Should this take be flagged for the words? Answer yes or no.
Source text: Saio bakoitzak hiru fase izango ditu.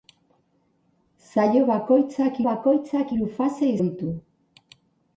yes